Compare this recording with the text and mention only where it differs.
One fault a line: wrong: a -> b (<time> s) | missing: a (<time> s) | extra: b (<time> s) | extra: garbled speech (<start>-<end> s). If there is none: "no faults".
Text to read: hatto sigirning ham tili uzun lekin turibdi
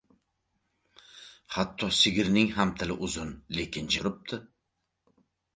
no faults